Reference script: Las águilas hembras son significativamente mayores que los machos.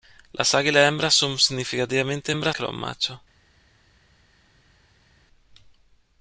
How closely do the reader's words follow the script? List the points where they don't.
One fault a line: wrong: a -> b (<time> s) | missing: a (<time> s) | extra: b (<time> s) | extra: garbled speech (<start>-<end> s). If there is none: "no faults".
wrong: mayores -> hembras (2.3 s)